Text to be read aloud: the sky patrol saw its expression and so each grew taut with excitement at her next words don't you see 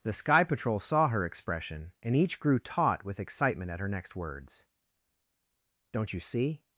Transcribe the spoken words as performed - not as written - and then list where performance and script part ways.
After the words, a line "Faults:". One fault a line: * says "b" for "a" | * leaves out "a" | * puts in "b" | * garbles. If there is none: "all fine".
the sky patrol saw her expression and each grew taut with excitement at her next words don't you see
Faults:
* says "her" for "its"
* leaves out "so"